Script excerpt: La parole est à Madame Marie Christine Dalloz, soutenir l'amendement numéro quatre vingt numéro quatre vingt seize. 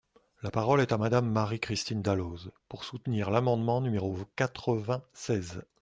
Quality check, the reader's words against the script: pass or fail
fail